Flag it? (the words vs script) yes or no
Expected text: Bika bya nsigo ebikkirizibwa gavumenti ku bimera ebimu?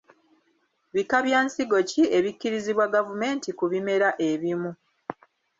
yes